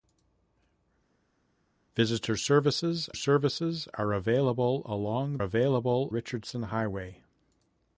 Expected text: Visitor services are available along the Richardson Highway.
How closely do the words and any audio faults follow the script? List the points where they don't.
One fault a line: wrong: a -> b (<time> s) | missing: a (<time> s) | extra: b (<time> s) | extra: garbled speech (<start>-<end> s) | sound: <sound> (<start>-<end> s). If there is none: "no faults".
extra: services (3.1 s)
wrong: the -> available (5.4 s)